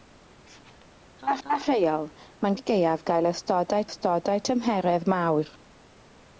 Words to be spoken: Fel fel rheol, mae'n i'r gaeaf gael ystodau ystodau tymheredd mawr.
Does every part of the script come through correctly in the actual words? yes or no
yes